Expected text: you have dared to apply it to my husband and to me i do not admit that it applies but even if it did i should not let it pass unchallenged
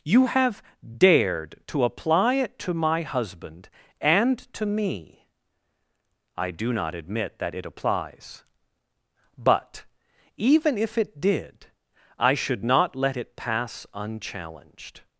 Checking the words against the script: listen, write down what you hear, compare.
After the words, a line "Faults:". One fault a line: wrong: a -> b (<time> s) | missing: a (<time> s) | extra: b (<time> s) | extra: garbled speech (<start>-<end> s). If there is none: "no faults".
you have dared to apply it to my husband and to me i do not admit that it applies but even if it did i should not let it pass unchallenged
Faults:
no faults